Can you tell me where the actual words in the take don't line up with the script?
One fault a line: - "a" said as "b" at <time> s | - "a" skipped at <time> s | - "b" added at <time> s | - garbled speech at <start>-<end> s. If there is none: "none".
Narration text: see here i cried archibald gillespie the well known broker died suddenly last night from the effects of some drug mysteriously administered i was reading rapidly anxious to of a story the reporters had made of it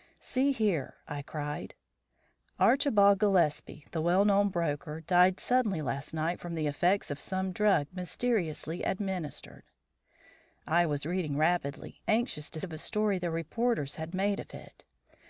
none